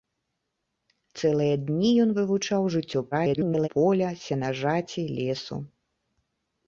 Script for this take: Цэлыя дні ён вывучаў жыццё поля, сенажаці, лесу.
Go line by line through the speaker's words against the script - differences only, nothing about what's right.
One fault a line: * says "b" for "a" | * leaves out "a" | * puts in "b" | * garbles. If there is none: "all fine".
* garbles